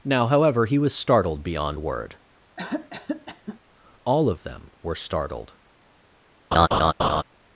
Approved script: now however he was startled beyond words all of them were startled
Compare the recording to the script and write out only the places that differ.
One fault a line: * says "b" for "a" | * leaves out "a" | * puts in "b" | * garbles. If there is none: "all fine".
* says "word" for "words"